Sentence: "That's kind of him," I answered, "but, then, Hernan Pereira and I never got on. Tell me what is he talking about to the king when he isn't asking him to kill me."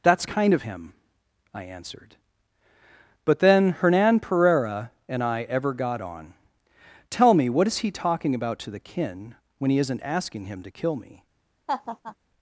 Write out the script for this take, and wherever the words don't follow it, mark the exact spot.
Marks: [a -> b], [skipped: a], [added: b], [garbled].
"That's kind of him," I answered, "but, then, Hernan Pereira and I [never -> ever] got on. Tell me what is he talking about to the [king -> kin] when he isn't asking him to kill me."